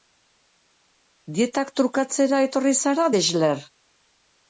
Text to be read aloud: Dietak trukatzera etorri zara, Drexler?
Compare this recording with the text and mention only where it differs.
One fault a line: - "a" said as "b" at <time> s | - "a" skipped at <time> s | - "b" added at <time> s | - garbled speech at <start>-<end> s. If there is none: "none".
none